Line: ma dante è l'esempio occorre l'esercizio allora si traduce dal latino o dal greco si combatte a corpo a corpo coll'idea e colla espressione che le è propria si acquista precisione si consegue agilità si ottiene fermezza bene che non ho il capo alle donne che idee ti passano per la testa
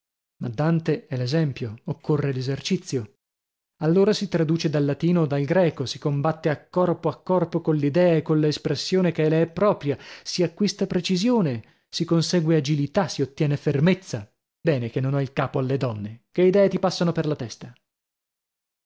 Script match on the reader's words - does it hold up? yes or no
yes